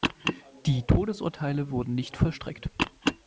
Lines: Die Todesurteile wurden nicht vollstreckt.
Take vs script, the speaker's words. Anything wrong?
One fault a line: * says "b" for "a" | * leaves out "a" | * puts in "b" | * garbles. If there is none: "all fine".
all fine